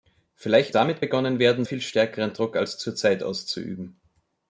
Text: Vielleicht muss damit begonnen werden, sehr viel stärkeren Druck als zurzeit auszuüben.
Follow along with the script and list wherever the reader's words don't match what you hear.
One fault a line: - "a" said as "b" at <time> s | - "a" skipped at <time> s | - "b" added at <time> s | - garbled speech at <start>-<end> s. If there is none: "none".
- "muss" skipped at 0.7 s
- "sehr" skipped at 1.7 s